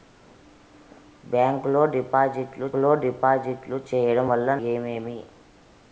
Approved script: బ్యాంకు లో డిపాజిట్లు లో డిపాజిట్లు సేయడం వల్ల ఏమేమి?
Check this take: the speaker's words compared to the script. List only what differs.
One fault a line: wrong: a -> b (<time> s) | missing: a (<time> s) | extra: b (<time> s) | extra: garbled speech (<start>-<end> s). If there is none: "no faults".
no faults